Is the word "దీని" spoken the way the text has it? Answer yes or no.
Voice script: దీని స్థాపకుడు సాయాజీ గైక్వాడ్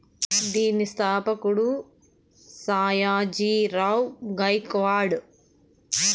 yes